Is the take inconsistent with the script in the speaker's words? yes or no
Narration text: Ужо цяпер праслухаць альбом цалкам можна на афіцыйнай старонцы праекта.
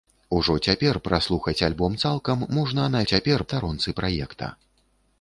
yes